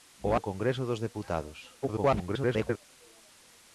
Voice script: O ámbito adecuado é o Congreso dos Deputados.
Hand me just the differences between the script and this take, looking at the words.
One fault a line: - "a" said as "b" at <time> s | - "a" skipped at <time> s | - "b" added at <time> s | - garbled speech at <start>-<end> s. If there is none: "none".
- "ámbito adecuado é" skipped at 0.3 s
- garbled speech at 1.8-2.8 s